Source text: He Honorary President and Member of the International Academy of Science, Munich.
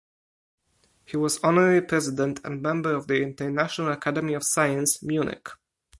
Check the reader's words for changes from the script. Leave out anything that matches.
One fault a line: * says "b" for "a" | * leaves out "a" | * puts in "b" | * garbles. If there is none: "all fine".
* puts in "was"